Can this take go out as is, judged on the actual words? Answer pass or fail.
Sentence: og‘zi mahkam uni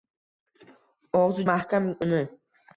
pass